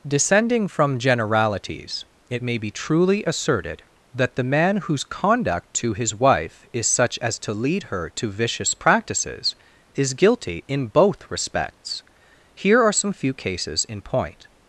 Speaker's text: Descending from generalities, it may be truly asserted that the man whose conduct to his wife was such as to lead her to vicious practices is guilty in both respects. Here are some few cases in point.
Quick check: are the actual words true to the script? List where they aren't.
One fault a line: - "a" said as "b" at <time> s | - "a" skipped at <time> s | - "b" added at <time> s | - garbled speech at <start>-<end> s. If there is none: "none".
- "was" said as "is" at 6.7 s